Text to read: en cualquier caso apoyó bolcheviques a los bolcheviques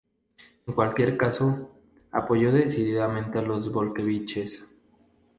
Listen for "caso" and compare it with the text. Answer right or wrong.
right